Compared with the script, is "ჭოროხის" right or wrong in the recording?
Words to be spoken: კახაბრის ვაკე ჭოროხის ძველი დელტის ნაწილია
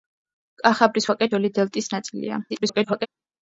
wrong